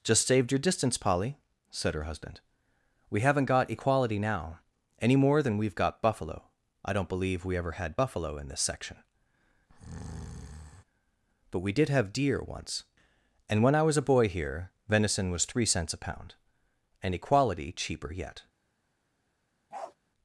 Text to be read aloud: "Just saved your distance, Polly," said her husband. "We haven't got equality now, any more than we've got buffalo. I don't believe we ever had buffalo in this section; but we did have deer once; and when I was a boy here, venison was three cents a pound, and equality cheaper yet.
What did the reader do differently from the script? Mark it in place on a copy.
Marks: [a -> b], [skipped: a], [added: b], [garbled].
"Just saved your distance, Polly," said her husband. "We haven't got equality now, any more than we've got buffalo. I don't believe we ever had buffalo in this section; but we did have deer once; and when I was a boy here, venison was three cents a pound, and equality cheaper yet.